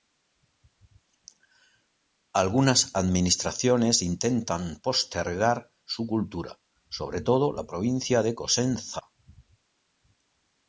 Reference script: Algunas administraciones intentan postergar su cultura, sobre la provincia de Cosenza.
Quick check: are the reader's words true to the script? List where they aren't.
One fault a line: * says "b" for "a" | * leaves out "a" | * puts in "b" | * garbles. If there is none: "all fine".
* puts in "todo"